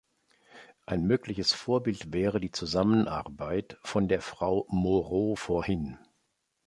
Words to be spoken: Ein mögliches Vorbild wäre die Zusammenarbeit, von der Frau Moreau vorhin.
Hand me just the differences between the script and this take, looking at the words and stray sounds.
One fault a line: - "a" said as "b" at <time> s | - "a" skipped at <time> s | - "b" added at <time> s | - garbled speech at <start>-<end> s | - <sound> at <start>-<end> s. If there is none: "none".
none